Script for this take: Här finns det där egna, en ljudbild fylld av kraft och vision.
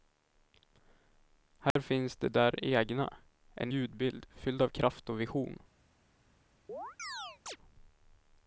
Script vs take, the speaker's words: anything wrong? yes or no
no